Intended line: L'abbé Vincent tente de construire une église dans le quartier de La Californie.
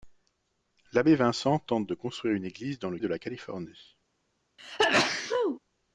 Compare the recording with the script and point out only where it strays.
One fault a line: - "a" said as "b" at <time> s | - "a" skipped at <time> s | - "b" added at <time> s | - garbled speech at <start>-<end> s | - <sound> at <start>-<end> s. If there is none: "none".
- "quartier" skipped at 3.0 s
- sneeze at 4.6-5.6 s